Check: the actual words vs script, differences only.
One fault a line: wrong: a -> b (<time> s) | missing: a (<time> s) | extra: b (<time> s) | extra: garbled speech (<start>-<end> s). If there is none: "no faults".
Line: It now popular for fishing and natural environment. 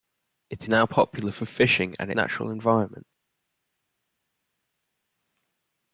no faults